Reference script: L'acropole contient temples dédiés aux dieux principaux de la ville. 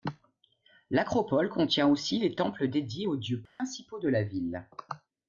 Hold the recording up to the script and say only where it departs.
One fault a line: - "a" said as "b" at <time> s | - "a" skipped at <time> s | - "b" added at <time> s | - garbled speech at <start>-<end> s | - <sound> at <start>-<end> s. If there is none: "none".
- "aussi les" added at 1.9 s
- dropout at 3.5-3.6 s